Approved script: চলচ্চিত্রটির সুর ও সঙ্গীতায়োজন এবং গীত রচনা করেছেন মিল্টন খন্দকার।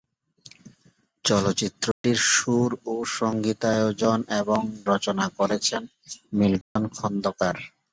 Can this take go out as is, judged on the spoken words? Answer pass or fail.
fail